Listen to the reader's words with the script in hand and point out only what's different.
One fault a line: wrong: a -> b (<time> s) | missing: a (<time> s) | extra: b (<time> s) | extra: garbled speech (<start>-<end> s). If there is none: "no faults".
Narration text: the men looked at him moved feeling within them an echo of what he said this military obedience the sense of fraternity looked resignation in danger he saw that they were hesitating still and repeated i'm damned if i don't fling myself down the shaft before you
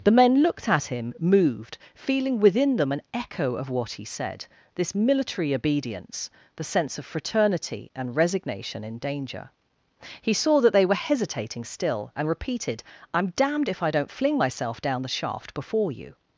wrong: looked -> and (8.0 s)